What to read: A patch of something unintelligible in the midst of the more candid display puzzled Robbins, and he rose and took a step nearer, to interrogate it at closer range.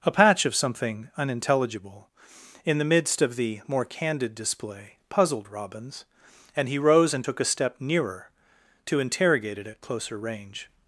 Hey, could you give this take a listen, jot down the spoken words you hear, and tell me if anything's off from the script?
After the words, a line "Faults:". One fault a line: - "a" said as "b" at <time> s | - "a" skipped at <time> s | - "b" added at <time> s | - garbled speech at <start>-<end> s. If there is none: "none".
A patch of something unintelligible in the midst of the more candid display puzzled Robbins, and he rose and took a step nearer, to interrogate it at closer range.
Faults:
none